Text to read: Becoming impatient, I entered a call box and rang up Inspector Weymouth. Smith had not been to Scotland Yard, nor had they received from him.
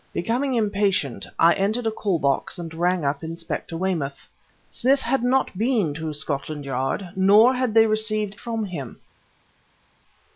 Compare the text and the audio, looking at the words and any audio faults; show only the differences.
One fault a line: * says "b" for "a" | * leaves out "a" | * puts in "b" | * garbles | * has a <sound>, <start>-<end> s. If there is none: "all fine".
all fine